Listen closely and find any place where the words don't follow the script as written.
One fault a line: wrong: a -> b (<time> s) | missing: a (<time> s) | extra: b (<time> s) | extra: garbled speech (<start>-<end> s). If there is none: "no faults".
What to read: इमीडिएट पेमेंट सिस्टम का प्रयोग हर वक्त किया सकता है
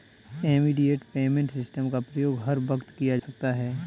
no faults